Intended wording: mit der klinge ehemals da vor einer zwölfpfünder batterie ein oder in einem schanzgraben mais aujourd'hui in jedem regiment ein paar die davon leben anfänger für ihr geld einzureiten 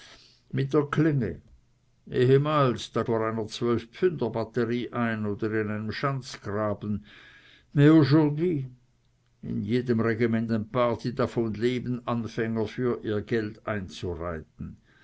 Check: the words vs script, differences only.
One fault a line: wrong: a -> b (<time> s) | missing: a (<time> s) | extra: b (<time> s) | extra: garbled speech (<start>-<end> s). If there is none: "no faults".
no faults